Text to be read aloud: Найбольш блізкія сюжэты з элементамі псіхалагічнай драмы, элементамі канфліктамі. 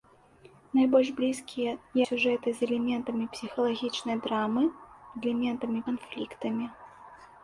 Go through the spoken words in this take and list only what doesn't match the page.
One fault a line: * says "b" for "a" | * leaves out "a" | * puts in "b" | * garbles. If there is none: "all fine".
all fine